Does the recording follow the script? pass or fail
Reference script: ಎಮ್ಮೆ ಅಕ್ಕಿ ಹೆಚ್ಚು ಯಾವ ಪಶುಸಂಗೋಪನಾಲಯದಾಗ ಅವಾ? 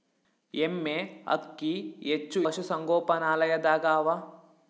fail